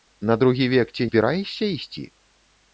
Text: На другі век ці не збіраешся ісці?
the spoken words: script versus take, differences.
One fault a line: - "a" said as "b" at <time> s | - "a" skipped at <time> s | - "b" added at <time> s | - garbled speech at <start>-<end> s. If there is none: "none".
- "не" skipped at 1.1 s